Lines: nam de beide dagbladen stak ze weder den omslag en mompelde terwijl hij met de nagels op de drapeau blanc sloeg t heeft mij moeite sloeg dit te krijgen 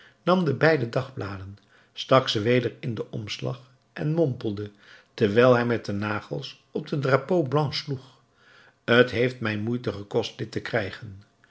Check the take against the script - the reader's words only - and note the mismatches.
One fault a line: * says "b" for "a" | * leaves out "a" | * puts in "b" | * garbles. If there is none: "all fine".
* puts in "in"
* says "gekost" for "sloeg"